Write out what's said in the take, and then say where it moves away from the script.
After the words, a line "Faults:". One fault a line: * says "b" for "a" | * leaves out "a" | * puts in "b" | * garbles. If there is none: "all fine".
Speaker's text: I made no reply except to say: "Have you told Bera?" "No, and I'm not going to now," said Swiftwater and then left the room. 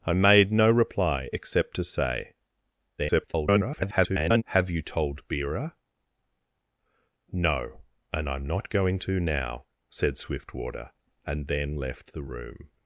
I made no reply except to say: [garbled] "Have you told Bera?" "No, and I'm not going to now," said Swiftwater and then left the room.
Faults:
* garbles